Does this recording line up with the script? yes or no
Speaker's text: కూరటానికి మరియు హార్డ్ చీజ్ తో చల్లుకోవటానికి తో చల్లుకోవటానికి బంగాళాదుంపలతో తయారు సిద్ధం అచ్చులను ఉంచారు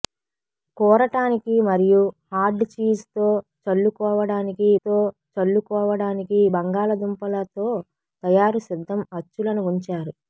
yes